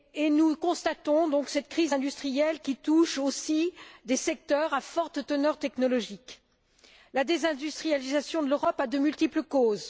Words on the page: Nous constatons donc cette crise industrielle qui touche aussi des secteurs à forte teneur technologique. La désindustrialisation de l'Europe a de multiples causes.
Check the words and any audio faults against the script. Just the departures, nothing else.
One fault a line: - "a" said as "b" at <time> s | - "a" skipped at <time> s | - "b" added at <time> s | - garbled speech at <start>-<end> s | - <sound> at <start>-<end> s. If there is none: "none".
none